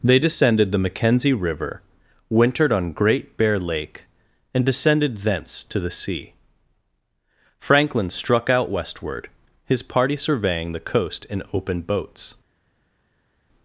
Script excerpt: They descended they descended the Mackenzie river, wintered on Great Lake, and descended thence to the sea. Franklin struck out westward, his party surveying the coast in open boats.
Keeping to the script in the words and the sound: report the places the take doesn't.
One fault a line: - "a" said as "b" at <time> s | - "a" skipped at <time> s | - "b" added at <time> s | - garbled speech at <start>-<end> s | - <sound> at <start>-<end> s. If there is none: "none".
- "they descended" skipped at 0.7 s
- "Bear" added at 3.4 s